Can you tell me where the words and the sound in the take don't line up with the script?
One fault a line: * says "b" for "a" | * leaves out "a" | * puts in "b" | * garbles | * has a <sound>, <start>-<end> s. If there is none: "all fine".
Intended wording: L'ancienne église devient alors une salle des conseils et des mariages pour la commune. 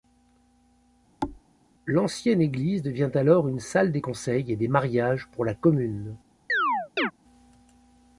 * has a thud, 1.2-1.4 s
* has a chirp, 6.5-7.1 s